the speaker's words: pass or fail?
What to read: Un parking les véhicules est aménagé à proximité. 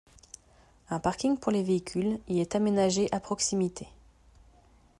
fail